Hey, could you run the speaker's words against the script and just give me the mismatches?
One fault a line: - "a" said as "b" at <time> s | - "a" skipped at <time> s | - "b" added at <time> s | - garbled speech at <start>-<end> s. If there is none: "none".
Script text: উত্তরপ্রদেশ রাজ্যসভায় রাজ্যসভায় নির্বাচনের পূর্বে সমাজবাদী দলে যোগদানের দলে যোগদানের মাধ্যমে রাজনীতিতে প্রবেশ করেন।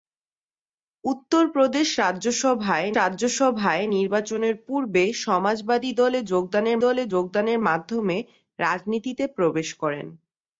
none